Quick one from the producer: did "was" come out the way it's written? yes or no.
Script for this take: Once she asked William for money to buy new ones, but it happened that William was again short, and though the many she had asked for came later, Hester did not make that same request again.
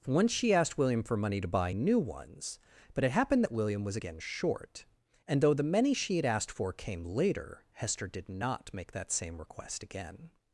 yes